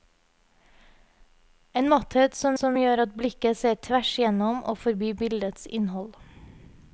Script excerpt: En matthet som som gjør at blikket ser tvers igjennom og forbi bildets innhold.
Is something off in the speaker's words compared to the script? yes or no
no